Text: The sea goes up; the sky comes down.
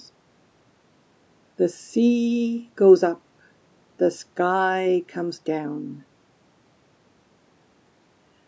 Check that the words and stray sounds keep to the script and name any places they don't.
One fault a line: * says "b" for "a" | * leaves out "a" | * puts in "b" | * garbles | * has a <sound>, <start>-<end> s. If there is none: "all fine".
all fine